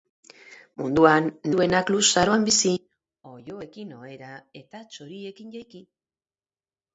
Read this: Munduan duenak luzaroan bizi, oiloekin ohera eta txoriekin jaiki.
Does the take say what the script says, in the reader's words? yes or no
yes